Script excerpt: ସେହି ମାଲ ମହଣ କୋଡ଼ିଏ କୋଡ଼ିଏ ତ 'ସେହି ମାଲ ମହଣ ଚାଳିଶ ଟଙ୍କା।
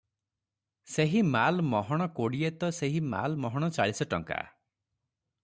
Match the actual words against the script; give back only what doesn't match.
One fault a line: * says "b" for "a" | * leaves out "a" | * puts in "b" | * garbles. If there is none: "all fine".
* leaves out "କୋଡ଼ିଏ"